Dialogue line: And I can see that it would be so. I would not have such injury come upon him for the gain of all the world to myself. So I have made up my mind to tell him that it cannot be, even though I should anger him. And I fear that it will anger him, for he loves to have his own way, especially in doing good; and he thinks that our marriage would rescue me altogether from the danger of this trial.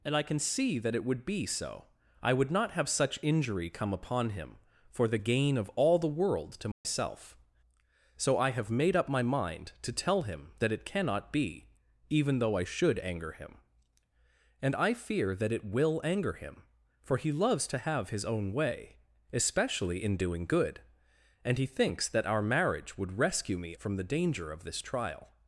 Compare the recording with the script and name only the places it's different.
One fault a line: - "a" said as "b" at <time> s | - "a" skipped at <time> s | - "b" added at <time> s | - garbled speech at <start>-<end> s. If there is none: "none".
- "altogether" skipped at 23.8 s